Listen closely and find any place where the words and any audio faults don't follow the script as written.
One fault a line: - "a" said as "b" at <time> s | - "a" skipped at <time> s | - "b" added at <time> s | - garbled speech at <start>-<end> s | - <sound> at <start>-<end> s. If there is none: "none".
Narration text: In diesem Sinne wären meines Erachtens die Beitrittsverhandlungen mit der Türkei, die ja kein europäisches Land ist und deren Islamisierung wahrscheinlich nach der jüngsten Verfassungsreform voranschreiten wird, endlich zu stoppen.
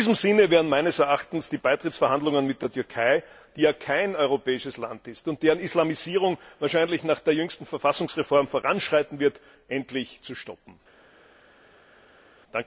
none